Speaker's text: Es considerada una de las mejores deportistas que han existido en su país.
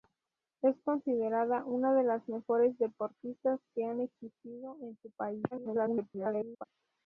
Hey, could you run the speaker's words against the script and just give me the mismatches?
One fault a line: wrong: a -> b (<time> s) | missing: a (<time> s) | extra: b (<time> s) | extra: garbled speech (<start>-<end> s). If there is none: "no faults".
extra: garbled speech (5.5-6.6 s)